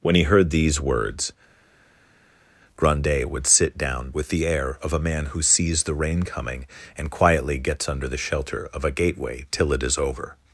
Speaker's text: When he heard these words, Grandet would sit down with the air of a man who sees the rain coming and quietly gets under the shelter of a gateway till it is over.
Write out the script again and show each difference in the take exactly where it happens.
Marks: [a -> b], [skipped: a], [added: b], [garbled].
When he heard these words, Grandet would sit down with the air of a man who sees the rain coming and quietly gets under the shelter of a gateway till it is over.